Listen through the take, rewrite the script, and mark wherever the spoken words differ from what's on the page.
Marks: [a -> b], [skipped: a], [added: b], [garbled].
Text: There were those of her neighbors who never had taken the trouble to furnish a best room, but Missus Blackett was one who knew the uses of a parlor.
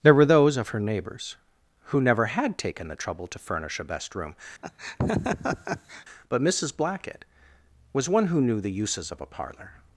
There were those of her neighbors who never had taken the trouble to furnish a best room, but Missus Blackett was one who knew the uses of a parlor.